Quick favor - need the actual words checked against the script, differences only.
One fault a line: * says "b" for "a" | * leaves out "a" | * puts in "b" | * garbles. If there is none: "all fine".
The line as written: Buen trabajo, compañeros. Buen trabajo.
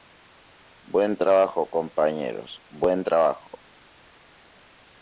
all fine